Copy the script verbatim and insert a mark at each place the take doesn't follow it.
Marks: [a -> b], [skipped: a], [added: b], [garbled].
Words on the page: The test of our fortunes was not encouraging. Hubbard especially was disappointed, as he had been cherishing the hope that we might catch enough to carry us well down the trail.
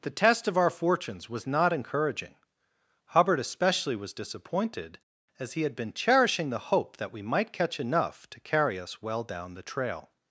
The test of our fortunes was not encouraging. Hubbard especially was disappointed, as he had been cherishing the hope that we might catch enough to carry us well down the trail.